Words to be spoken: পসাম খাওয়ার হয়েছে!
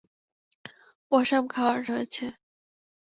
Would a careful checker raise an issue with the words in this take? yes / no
no